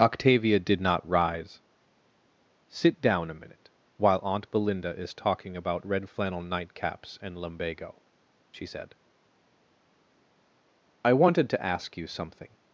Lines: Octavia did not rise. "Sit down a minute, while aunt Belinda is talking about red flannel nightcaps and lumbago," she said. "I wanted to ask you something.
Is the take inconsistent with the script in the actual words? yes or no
no